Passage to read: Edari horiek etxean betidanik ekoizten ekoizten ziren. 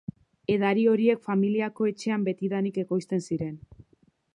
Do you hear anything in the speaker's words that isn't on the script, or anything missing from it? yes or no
yes